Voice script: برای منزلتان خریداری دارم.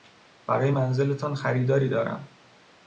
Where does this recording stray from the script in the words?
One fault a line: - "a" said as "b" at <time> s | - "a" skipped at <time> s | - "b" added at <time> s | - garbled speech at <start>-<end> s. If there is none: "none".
none